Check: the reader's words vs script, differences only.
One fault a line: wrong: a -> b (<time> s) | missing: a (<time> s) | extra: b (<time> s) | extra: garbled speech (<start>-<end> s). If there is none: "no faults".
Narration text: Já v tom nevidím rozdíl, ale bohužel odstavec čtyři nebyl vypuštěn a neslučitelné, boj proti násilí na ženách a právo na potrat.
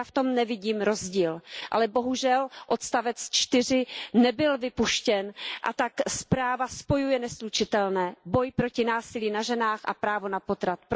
extra: tak zpráva spojuje (5.7 s)